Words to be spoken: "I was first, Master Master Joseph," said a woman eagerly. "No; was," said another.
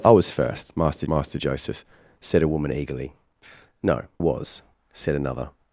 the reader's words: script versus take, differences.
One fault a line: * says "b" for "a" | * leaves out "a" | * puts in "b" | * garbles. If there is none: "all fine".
all fine